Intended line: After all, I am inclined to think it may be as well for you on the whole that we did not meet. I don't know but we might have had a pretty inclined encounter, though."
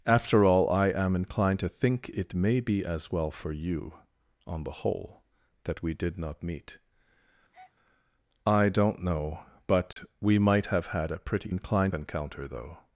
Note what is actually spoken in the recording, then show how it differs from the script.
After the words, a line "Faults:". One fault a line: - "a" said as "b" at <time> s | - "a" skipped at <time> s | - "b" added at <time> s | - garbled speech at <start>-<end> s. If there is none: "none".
After all, I am inclined to think it may be as well for you on the whole that we did not meet. I don't know but we might have had a pretty inclined encounter, though."
Faults:
none